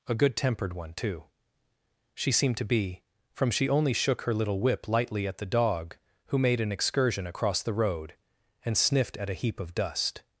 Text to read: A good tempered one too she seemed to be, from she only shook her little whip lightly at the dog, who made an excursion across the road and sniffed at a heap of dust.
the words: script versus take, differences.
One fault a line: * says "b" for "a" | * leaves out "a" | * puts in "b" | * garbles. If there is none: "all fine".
all fine